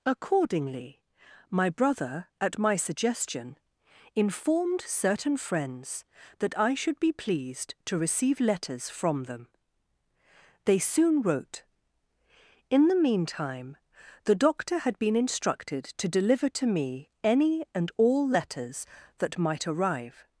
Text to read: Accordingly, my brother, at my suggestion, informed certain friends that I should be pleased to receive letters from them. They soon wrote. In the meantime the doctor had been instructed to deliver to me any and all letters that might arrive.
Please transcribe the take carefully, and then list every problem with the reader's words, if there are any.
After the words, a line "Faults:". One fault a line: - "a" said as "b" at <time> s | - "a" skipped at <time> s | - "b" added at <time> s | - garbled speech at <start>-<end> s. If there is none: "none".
Accordingly, my brother, at my suggestion, informed certain friends that I should be pleased to receive letters from them. They soon wrote. In the meantime the doctor had been instructed to deliver to me any and all letters that might arrive.
Faults:
none